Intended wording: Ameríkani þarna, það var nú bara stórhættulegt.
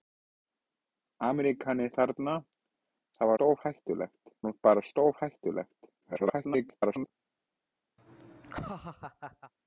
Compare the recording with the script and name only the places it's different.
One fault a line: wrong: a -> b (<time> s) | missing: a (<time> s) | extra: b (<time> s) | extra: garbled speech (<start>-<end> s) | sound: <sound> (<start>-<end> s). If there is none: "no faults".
wrong: var -> stórhættulegt (3.3 s)
extra: garbled speech (6.0-7.1 s)
sound: laugh (8.0-9.5 s)